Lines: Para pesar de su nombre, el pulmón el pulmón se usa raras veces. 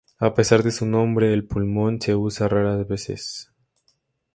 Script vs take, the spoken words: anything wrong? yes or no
yes